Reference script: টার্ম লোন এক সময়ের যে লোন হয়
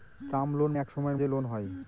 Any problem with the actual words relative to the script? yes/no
no